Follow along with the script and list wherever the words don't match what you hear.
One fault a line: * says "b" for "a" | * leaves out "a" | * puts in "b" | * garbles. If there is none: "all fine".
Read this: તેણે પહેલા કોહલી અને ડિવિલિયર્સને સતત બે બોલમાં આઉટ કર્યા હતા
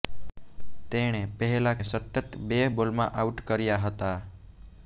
* leaves out "કોહલી અને ડિવિલિયર્સને"